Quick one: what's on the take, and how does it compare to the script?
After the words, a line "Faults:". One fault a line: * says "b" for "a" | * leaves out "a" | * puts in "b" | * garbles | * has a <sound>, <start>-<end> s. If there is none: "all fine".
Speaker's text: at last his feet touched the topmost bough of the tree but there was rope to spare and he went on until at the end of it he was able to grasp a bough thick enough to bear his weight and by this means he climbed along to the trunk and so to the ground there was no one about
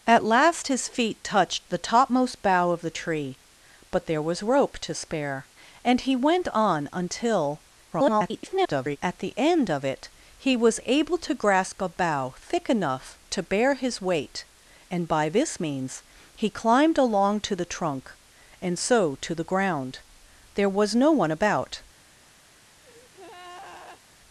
at last his feet touched the topmost bough of the tree but there was rope to spare and he went on until [garbled] at the end of it he was able to grasp a bough thick enough to bear his weight and by this means he climbed along to the trunk and so to the ground there was no one about
Faults:
* garbles
* has a breath, 22.8-24.0 s